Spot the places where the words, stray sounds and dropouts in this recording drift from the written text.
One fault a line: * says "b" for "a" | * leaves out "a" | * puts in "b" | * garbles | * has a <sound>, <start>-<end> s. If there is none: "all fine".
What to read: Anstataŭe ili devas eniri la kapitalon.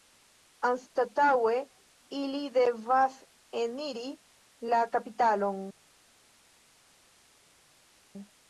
all fine